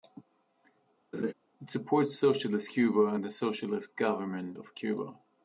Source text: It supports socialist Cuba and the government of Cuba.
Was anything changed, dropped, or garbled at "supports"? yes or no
no